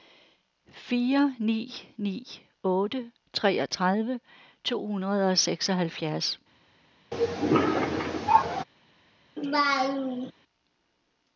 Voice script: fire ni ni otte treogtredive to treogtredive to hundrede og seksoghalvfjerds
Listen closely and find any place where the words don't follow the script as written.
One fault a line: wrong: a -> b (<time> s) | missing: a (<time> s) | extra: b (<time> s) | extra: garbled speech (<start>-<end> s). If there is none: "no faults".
missing: treogtredive to (4.8 s)